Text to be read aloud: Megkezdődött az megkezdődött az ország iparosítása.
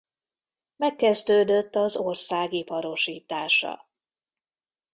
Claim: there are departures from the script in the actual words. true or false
true